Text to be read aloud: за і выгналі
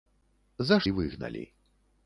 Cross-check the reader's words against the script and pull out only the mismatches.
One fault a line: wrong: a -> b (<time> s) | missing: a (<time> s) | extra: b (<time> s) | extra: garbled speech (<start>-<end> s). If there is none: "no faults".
no faults